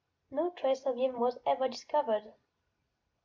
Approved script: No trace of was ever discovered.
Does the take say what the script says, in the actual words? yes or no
no